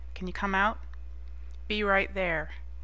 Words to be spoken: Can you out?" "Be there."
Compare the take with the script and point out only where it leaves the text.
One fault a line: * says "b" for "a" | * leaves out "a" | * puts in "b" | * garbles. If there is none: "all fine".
* puts in "come"
* puts in "right"